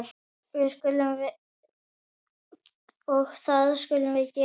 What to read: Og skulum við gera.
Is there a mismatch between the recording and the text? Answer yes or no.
yes